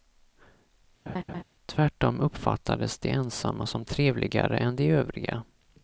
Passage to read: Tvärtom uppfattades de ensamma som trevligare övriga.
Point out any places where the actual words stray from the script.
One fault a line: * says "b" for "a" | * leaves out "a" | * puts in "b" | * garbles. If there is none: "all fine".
* puts in "än de"